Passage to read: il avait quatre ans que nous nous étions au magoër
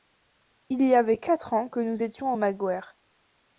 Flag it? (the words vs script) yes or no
yes